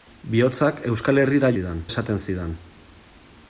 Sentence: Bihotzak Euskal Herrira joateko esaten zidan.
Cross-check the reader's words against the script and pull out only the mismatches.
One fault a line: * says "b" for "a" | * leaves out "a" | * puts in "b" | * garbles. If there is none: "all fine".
* says "zidan" for "joateko"